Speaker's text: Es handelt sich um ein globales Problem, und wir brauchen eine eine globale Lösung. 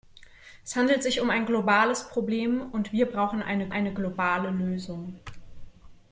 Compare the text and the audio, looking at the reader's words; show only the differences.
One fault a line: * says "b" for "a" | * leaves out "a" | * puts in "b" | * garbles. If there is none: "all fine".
all fine